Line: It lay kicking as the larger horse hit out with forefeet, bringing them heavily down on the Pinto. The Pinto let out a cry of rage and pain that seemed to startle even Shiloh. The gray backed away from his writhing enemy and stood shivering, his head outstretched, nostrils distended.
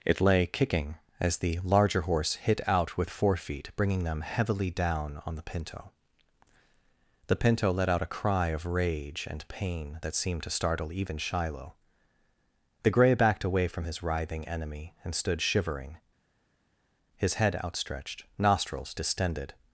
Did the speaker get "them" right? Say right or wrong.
right